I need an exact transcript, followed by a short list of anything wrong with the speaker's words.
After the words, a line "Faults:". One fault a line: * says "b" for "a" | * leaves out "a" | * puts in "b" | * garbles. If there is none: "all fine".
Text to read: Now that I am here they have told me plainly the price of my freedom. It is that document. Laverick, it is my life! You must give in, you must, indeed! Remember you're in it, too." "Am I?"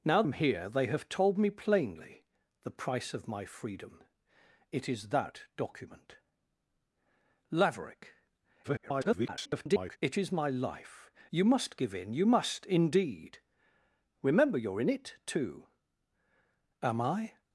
Now am here they have told me plainly the price of my freedom. It is that document. Laverick, [garbled] it is my life! You must give in, you must, indeed! Remember you're in it, too." "Am I?"
Faults:
* leaves out "that I"
* garbles